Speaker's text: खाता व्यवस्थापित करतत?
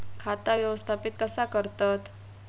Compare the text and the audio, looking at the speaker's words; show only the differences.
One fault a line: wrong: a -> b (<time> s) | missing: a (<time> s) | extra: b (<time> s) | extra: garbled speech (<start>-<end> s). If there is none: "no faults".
extra: कसा (1.2 s)